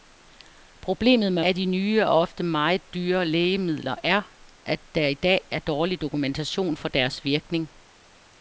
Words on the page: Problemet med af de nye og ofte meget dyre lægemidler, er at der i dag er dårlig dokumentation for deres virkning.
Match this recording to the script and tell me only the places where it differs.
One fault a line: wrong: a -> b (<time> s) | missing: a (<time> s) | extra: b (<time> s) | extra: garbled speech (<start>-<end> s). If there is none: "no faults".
no faults